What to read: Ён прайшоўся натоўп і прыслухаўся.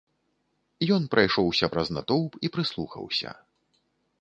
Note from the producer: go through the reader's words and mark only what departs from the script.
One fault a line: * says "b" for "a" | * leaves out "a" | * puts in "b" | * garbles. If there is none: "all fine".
* puts in "праз"